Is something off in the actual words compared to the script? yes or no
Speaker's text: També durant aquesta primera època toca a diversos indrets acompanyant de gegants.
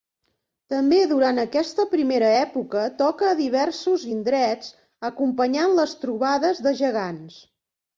yes